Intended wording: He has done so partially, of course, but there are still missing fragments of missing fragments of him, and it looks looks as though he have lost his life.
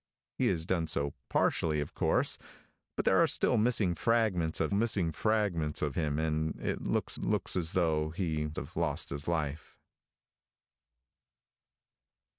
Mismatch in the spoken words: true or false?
false